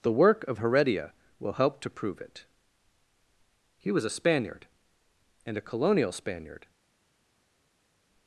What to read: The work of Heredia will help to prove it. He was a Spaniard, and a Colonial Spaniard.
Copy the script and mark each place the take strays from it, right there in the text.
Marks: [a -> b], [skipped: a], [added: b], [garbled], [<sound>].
The work of Heredia will help to prove it. He was a Spaniard, and a Colonial Spaniard.